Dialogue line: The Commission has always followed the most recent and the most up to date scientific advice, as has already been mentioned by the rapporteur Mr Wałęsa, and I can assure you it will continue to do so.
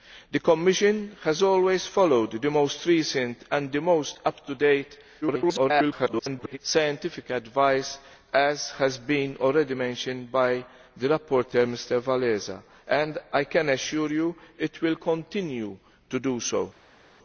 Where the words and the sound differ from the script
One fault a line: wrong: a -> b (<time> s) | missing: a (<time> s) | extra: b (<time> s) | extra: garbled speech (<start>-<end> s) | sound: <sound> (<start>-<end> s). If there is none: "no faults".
extra: garbled speech (5.2-6.6 s)